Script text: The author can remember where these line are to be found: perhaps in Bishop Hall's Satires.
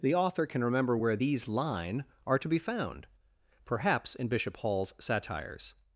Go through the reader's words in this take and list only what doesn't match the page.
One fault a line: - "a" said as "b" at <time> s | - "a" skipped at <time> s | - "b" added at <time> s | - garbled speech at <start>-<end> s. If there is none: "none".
none